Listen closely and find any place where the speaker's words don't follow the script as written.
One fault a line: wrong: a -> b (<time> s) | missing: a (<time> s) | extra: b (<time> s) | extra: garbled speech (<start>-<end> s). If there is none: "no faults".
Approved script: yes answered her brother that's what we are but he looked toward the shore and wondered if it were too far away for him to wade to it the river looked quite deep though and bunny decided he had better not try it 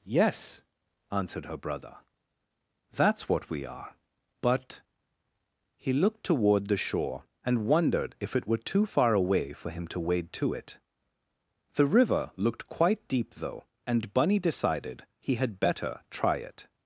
missing: not (16.0 s)